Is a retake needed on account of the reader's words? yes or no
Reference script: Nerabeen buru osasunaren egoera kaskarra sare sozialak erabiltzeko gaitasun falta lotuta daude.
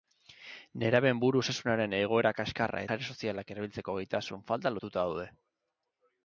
no